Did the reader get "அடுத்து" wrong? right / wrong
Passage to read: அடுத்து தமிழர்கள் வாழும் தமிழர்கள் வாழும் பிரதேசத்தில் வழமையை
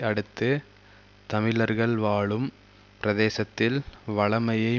right